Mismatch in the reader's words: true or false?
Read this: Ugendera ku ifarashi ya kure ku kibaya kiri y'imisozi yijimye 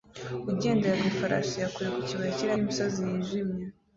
false